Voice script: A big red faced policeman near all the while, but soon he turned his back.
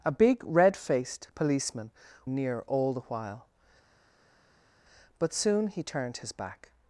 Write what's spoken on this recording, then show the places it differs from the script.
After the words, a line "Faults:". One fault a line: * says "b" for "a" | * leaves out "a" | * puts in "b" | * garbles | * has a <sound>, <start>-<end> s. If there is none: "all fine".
A big red faced policeman near all the while, but soon he turned his back.
Faults:
all fine